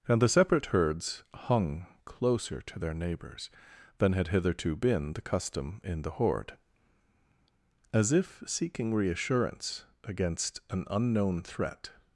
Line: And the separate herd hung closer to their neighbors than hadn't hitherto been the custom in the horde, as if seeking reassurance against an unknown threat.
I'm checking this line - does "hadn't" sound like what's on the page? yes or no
no